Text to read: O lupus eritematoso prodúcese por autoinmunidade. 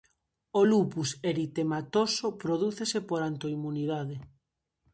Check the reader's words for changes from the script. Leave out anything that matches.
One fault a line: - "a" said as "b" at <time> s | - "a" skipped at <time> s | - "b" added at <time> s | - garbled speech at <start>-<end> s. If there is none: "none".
none